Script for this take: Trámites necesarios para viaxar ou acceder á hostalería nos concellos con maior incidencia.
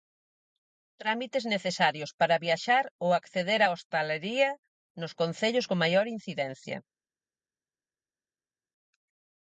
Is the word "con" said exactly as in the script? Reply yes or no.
yes